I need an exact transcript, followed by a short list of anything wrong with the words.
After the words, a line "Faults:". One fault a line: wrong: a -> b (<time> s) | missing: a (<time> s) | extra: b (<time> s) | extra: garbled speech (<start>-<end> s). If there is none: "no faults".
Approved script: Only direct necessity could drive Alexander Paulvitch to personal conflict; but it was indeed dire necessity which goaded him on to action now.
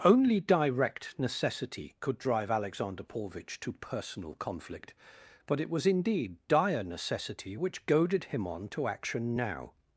Only direct necessity could drive Alexander Paulvitch to personal conflict; but it was indeed dire necessity which goaded him on to action now.
Faults:
no faults